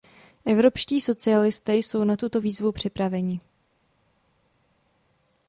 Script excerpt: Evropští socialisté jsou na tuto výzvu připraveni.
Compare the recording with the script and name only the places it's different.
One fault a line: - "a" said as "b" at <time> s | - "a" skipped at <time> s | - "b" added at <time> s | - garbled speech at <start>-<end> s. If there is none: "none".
none